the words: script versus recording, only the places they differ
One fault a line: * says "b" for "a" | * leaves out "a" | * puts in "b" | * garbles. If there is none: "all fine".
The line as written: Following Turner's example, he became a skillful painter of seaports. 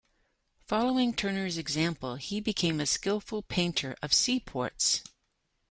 all fine